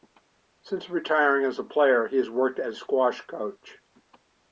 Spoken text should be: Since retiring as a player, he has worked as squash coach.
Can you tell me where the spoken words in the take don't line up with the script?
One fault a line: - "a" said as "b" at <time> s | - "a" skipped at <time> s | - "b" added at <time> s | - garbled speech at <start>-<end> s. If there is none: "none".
none